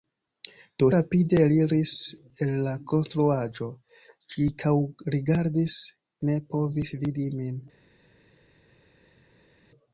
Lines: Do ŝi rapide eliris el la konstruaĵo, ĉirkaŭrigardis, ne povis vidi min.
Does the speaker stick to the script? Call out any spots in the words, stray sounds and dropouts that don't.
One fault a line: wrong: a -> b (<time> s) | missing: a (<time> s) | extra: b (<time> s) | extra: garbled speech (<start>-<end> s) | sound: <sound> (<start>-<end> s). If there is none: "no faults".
missing: ŝi (0.9 s)